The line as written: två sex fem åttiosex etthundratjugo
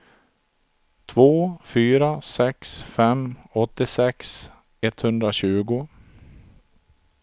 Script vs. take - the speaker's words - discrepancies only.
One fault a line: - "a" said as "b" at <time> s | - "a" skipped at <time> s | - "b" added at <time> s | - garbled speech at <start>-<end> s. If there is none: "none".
- "fyra" added at 1.6 s